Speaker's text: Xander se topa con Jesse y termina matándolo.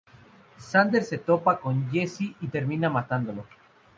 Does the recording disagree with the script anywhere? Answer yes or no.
no